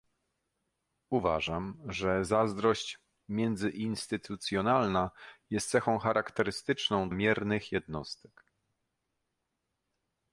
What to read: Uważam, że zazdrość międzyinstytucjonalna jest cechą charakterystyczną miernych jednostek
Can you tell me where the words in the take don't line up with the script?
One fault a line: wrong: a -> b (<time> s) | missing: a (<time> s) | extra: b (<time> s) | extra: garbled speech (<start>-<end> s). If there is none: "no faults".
no faults